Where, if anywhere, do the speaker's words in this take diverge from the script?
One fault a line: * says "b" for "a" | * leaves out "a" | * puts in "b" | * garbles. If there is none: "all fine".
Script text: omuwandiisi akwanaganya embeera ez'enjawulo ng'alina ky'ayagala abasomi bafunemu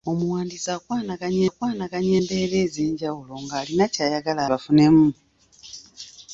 * puts in "akwanaganya"
* leaves out "abasomi"